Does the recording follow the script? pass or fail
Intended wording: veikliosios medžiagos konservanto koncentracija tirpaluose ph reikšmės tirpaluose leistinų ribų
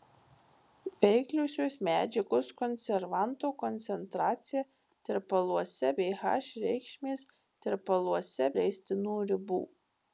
pass